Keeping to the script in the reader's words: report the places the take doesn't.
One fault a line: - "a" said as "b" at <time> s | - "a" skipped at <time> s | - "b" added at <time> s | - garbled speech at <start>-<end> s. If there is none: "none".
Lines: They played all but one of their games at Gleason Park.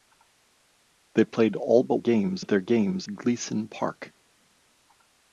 - "one" said as "games" at 2.0 s
- "at" skipped at 3.1 s